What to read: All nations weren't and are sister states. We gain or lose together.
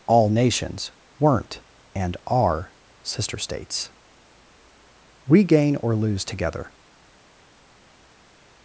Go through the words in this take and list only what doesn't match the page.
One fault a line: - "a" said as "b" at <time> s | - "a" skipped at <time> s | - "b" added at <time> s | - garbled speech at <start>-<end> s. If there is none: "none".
none